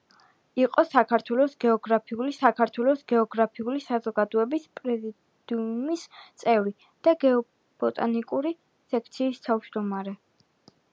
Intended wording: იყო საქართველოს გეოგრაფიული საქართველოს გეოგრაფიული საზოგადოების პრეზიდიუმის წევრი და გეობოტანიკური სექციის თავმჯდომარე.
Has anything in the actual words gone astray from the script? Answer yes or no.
no